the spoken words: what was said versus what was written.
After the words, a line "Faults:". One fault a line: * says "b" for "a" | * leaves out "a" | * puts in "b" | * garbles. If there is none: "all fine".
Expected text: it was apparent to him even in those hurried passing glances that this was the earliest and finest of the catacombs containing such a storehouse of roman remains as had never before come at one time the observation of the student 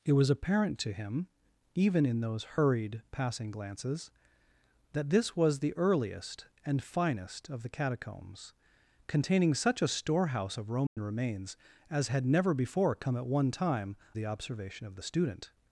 it was apparent to him even in those hurried passing glances that this was the earliest and finest of the catacombs containing such a storehouse of roman remains as had never before come at one time the observation of the student
Faults:
all fine